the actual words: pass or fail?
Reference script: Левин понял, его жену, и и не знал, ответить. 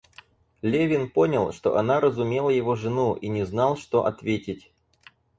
fail